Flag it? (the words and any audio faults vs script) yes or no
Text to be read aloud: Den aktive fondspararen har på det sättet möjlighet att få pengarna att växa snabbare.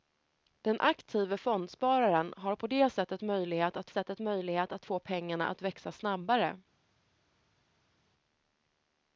yes